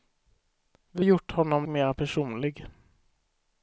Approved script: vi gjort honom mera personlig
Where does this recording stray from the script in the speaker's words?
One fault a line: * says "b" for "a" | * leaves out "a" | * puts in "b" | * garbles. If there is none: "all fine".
all fine